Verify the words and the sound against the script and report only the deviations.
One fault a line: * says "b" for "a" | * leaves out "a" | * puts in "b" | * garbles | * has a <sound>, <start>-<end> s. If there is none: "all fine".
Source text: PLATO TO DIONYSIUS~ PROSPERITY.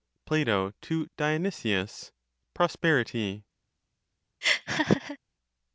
* has a laugh, 4.4-5.2 s